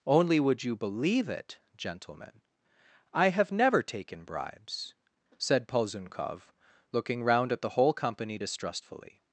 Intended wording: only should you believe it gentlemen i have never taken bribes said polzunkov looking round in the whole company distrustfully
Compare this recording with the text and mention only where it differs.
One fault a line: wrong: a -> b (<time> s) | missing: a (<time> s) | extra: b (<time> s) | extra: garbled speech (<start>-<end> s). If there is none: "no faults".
wrong: should -> would (0.4 s)
wrong: in -> at (7.5 s)